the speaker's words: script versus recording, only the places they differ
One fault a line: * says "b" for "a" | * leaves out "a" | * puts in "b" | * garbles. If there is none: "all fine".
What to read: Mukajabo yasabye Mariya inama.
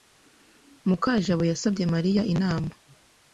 all fine